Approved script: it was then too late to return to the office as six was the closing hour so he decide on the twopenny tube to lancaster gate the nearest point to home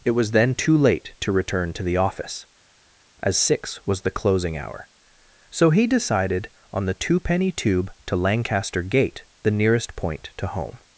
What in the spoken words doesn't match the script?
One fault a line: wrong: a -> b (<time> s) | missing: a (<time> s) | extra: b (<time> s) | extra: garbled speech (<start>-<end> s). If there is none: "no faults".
wrong: decide -> decided (5.9 s)